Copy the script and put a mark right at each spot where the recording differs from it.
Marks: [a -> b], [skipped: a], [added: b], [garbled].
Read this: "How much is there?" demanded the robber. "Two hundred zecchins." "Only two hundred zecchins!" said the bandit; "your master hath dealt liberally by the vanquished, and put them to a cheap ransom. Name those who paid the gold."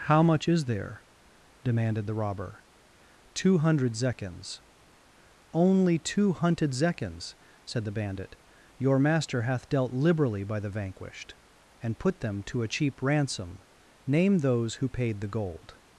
"How much is there?" demanded the robber. "Two hundred zecchins." "Only two [hundred -> hunted] zecchins!" said the bandit; "your master hath dealt liberally by the vanquished, and put them to a cheap ransom. Name those who paid the gold."